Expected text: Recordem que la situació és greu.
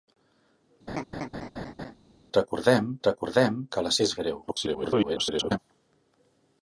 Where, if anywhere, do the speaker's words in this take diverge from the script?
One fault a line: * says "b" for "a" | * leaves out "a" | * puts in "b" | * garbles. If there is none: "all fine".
* puts in "recordem"
* leaves out "situació"
* garbles